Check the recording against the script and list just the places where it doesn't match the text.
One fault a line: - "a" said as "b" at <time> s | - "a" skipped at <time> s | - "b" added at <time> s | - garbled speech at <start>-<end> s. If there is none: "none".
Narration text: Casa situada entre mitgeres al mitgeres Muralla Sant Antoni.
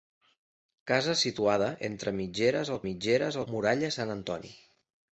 none